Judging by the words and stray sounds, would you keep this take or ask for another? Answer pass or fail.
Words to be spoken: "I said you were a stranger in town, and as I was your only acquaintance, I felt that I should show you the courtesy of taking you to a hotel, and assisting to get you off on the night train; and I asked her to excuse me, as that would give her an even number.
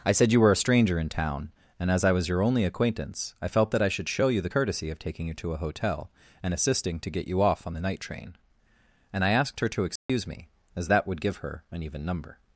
fail